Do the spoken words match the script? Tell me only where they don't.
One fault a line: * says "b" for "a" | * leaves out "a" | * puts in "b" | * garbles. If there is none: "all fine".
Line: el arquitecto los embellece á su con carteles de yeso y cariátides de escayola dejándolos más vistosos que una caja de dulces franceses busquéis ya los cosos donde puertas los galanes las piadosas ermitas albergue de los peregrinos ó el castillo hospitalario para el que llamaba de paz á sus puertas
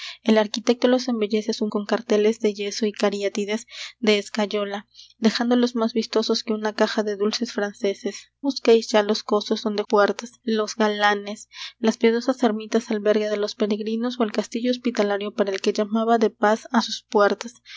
all fine